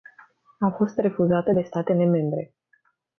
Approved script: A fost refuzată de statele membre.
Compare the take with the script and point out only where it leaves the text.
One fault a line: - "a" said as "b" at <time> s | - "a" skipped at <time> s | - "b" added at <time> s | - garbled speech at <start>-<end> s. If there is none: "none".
none